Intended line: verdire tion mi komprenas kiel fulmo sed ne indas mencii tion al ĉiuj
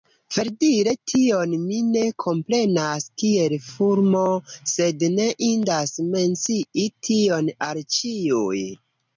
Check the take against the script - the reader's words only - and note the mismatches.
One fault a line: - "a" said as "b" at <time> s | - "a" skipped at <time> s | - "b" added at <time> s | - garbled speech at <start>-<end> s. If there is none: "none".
- "ne" added at 1.9 s